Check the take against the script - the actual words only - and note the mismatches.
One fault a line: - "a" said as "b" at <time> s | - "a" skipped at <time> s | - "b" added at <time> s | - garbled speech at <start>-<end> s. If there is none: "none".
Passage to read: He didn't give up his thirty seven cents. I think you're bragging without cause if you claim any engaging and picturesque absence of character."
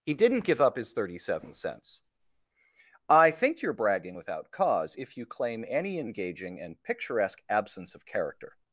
none